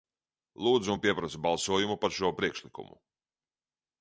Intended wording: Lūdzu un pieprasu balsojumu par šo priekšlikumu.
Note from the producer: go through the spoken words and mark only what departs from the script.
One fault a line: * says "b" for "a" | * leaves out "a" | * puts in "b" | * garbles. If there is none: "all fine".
all fine